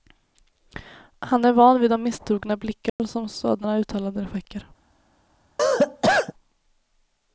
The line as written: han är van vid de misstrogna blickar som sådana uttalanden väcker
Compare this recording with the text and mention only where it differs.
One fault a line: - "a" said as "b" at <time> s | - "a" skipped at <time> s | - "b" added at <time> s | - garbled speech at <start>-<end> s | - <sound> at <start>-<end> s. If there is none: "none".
- dropout at 2.9-3.0 s
- cough at 5.6-6.3 s